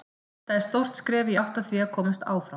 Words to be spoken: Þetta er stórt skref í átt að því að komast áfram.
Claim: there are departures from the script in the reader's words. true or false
false